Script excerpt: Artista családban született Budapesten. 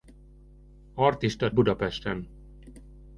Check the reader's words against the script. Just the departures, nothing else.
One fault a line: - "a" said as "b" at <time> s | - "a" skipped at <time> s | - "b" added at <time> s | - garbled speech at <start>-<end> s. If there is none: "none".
- "családban született" skipped at 1.5 s